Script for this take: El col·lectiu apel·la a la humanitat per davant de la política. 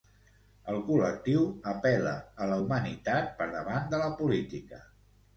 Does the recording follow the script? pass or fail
pass